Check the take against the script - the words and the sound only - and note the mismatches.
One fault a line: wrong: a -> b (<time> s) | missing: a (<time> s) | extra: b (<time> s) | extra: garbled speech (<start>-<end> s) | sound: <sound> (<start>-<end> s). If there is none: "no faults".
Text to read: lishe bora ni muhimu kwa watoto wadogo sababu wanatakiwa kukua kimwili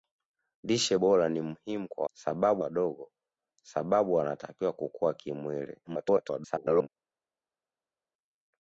wrong: watoto -> sababu (2.1 s)
extra: garbled speech (5.8-6.9 s)